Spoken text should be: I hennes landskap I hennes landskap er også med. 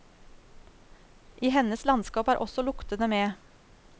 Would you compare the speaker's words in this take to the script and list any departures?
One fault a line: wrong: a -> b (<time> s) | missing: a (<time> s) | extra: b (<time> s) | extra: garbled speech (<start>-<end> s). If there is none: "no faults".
missing: I hennes landskap (2.3 s)
extra: luktene (2.6 s)